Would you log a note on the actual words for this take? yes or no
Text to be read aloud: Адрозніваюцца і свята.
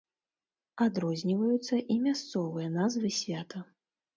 yes